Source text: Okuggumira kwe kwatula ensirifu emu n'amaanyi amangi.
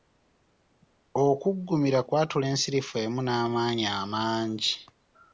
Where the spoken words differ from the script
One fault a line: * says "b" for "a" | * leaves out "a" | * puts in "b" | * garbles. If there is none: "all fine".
* leaves out "kwe"